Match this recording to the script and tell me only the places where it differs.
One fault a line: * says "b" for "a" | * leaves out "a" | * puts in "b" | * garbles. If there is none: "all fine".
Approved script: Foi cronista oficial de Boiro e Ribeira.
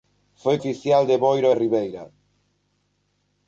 * leaves out "cronista"